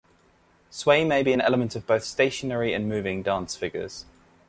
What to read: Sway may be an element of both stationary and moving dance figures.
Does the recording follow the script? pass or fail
pass